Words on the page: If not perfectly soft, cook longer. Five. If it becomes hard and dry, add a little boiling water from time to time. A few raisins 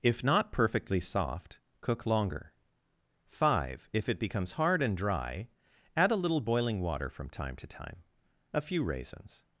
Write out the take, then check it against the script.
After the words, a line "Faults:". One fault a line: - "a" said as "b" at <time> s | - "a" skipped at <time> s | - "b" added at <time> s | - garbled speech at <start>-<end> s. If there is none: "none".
If not perfectly soft, cook longer. Five. If it becomes hard and dry, add a little boiling water from time to time. A few raisins
Faults:
none